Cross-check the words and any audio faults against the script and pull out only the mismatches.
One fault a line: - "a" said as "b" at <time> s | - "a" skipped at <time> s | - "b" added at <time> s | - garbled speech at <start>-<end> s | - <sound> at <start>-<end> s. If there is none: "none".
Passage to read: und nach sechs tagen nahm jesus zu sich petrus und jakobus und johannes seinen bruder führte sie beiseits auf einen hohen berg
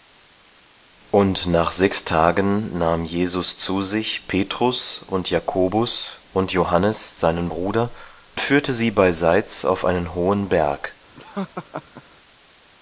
- laugh at 11.2-12.0 s